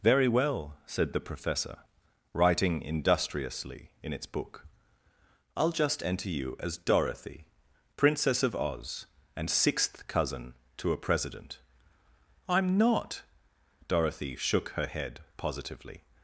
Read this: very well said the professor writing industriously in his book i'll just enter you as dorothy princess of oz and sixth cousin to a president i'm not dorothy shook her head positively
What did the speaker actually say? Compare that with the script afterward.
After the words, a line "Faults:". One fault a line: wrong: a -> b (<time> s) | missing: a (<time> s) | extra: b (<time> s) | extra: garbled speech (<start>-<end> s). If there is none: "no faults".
very well said the professor writing industriously in its book i'll just enter you as dorothy princess of oz and sixth cousin to a president i'm not dorothy shook her head positively
Faults:
wrong: his -> its (4.1 s)